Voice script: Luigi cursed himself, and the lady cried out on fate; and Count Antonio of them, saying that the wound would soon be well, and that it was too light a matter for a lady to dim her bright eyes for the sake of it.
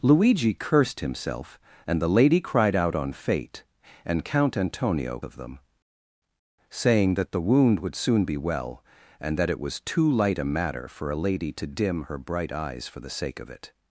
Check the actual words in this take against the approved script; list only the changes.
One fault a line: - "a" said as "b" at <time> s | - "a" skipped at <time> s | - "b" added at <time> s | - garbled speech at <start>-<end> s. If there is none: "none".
none